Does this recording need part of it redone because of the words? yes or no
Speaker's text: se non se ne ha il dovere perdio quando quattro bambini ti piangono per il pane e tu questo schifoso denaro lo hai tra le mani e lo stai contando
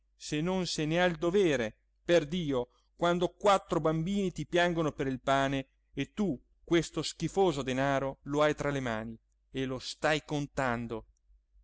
no